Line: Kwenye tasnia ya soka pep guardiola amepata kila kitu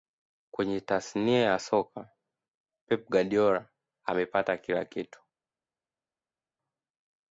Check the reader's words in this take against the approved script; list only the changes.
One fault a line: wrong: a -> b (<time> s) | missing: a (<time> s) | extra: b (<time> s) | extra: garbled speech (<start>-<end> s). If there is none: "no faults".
no faults